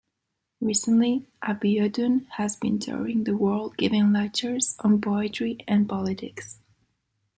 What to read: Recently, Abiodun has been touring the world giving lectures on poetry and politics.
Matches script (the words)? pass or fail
pass